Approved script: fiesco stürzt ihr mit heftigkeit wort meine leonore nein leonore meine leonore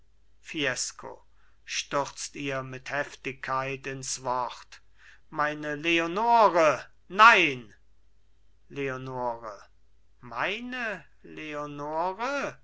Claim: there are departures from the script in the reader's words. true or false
true